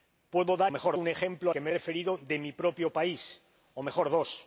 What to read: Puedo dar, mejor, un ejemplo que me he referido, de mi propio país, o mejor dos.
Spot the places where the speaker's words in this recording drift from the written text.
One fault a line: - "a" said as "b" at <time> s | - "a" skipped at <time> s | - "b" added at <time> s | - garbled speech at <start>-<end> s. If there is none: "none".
none